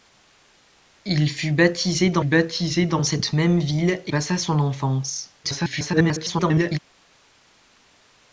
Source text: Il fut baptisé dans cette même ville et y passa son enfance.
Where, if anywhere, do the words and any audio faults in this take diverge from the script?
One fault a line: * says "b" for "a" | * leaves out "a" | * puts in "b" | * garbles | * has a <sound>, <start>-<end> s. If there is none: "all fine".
* puts in "baptisé dans"
* leaves out "y"
* garbles